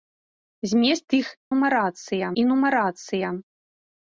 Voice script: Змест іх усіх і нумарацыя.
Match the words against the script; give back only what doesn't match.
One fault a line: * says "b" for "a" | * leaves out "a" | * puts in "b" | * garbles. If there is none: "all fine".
* says "нумарацыя" for "усіх"